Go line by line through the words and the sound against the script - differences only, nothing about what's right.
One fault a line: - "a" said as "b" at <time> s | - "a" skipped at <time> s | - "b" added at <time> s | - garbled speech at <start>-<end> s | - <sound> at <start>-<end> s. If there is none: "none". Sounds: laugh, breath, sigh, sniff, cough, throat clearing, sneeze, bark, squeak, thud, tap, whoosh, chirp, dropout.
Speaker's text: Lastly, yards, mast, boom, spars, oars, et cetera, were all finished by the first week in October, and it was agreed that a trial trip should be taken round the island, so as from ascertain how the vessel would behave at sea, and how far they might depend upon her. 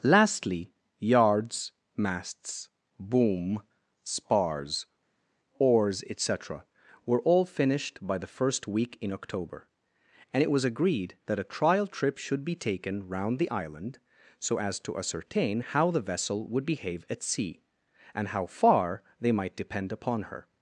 - "mast" said as "masts" at 1.9 s
- "from" said as "to" at 14.8 s